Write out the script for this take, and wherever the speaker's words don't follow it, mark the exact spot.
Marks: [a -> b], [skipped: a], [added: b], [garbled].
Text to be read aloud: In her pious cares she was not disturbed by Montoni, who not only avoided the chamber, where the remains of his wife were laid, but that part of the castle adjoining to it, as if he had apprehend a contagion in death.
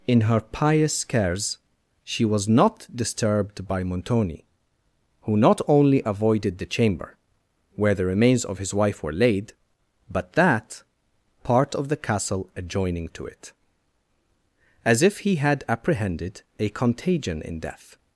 In her pious cares she was not disturbed by Montoni, who not only avoided the chamber, where the remains of his wife were laid, but that part of the castle adjoining to it, as if he had [apprehend -> apprehended] a contagion in death.